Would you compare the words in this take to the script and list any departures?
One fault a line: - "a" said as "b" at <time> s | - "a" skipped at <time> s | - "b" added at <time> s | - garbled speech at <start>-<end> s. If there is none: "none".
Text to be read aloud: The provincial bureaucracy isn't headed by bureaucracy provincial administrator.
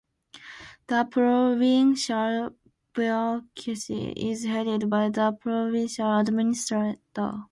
- "isn't" said as "is" at 4.2 s
- "bureaucracy" said as "the" at 5.1 s